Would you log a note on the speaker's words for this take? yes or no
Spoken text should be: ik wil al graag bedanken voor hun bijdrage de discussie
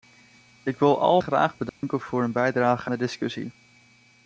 no